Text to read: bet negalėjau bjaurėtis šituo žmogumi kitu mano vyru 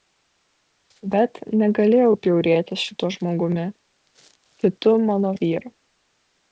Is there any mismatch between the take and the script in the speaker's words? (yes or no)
no